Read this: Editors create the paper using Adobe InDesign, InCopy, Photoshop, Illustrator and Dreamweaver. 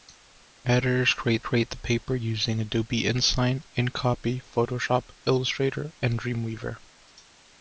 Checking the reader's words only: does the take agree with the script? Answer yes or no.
no